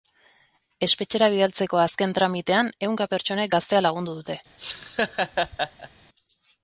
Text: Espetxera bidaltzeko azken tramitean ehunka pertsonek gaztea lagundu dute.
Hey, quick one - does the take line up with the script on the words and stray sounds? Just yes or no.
no